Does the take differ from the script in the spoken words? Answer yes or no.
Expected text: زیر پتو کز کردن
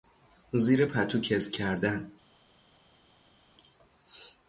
no